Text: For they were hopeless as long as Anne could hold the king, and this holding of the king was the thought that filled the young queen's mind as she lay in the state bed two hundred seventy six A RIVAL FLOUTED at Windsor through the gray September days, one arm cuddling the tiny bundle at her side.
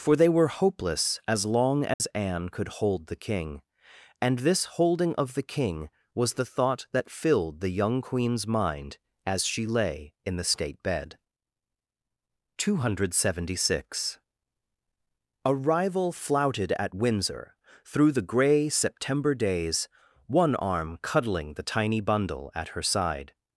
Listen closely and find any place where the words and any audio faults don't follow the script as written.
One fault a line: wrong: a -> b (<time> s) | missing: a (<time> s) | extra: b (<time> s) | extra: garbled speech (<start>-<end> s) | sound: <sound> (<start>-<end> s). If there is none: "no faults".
sound: dropout (1.9-2.0 s)